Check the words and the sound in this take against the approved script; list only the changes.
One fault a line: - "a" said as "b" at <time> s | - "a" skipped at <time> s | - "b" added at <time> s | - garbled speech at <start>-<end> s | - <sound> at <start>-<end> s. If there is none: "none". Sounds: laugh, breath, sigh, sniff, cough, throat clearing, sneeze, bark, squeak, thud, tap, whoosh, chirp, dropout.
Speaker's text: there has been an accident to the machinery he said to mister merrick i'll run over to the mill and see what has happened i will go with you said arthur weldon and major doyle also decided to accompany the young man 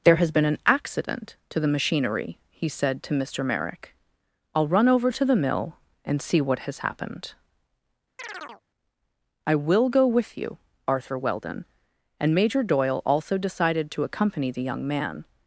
- chirp at 8.2-8.6 s
- "said" skipped at 10.6 s